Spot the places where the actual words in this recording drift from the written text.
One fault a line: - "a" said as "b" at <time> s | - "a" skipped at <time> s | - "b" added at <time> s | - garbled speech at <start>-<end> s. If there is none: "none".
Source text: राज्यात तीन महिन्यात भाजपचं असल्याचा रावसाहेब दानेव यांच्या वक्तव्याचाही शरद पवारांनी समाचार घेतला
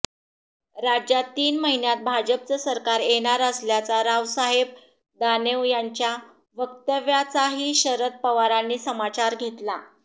- "सरकार येणार" added at 2.6 s